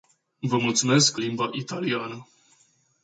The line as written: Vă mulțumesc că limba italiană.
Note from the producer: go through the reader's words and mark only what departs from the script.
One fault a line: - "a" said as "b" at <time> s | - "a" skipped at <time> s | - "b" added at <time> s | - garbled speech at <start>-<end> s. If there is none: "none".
none